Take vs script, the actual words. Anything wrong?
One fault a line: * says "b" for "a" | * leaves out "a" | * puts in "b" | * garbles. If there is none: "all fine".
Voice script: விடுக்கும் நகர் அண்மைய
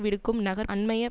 all fine